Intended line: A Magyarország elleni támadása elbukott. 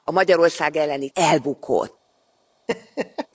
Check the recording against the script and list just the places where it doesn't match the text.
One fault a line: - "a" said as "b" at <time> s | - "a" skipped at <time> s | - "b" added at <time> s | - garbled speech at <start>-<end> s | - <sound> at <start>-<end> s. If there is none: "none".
- "támadása" skipped at 1.1 s
- laugh at 2.7-3.3 s